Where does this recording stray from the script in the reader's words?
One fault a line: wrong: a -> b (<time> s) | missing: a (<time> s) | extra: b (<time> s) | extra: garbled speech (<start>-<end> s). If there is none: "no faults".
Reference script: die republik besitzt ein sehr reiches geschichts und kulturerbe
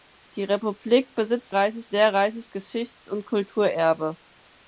wrong: ein -> reiches (1.5 s)